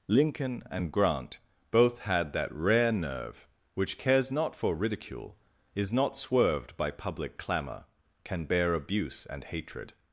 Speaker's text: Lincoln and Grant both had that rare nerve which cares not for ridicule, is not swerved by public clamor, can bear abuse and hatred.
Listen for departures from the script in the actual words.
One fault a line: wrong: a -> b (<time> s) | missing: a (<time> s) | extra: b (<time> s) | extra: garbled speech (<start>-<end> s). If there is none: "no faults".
no faults